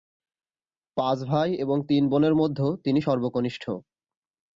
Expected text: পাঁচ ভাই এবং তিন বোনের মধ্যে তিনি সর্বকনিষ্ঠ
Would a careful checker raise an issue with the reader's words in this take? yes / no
no